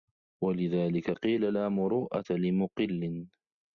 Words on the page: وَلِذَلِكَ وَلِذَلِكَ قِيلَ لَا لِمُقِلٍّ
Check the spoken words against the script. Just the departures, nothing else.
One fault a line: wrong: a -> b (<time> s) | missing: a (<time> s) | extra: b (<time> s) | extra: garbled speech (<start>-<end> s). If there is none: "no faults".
missing: وَلِذَلِكَ (1.1 s)
extra: مُرُوءَةَ (1.7 s)